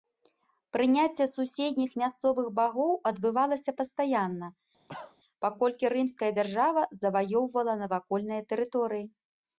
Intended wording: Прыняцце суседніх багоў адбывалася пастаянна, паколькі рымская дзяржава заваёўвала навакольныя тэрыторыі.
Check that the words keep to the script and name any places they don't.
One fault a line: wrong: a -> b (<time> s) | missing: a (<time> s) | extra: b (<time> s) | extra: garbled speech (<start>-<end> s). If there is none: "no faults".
extra: мясцовых (2.0 s)